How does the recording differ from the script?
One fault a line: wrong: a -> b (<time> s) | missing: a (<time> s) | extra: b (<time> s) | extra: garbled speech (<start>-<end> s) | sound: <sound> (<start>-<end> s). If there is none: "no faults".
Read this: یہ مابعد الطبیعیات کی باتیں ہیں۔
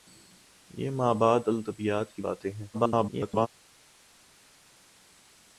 extra: garbled speech (2.7-3.5 s)